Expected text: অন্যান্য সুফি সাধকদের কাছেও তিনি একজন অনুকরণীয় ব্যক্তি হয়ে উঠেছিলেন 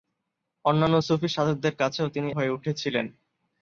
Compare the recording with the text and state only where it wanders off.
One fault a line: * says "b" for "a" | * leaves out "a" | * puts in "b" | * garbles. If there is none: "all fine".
* leaves out "একজন অনুকরণীয় ব্যক্তি"